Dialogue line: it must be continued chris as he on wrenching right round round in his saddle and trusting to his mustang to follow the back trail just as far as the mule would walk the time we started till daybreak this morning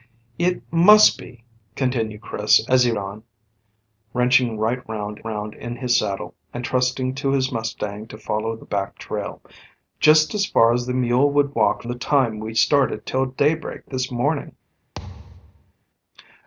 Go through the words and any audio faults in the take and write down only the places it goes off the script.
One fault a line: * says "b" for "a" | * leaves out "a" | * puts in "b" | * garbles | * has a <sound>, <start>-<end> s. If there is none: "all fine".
* has a thud, 15.0-15.7 s